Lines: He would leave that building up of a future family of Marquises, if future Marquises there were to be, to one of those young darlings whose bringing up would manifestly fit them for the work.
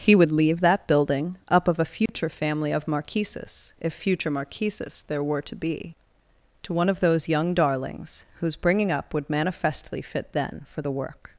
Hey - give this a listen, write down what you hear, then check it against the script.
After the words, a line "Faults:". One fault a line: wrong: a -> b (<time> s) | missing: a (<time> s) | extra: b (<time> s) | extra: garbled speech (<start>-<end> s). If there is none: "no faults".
He would leave that building up of a future family of Marquises, if future Marquises there were to be, to one of those young darlings whose bringing up would manifestly fit then for the work.
Faults:
wrong: them -> then (10.3 s)